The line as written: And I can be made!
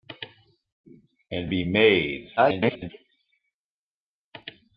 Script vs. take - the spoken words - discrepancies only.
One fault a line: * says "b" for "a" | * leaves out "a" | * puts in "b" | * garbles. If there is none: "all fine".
* leaves out "I can"
* garbles